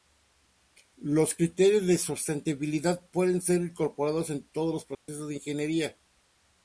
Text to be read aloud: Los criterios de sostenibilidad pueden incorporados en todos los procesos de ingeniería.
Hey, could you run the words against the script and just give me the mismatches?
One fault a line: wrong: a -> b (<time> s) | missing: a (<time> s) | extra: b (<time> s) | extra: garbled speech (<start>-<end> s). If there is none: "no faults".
extra: ser (3.4 s)